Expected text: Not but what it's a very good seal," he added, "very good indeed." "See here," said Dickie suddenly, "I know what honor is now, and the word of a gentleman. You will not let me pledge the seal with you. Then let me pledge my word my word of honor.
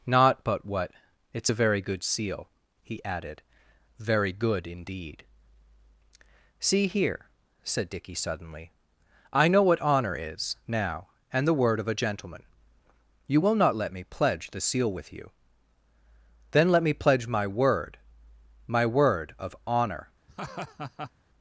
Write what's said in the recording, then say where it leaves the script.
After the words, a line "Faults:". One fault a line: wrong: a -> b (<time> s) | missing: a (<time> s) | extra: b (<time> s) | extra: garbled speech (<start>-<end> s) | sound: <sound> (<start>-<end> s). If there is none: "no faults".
Not but what it's a very good seal," he added, "very good indeed." "See here," said Dickie suddenly, "I know what honor is now, and the word of a gentleman. You will not let me pledge the seal with you. Then let me pledge my word my word of honor.
Faults:
sound: laugh (20.3-21.1 s)